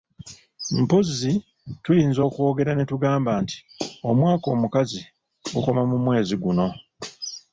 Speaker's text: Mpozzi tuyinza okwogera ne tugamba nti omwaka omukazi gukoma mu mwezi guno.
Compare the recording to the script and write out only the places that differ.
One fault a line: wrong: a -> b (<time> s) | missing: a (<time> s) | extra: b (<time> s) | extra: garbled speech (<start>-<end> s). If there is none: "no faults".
no faults